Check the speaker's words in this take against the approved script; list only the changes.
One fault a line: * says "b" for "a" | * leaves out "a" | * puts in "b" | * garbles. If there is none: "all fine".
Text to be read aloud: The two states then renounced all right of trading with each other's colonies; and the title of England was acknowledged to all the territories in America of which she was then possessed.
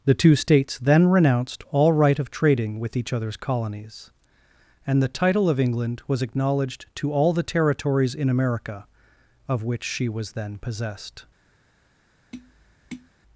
all fine